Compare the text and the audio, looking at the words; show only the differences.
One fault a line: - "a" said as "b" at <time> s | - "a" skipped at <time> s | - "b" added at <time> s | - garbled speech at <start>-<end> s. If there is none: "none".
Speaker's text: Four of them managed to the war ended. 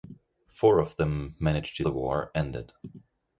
none